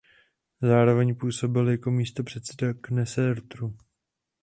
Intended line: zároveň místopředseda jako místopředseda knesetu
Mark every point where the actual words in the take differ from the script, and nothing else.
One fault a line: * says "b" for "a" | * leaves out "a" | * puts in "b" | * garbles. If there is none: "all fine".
* says "působil" for "místopředseda"